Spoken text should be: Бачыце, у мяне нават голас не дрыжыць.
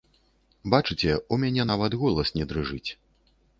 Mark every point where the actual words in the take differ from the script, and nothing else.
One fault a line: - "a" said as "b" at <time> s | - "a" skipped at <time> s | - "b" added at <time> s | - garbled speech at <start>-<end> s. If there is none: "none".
none